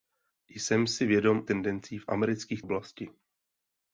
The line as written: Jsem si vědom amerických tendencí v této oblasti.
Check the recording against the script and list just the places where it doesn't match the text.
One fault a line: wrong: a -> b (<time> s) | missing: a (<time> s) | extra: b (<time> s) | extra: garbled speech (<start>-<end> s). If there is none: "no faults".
missing: amerických (1.4 s)
wrong: této -> amerických (2.1 s)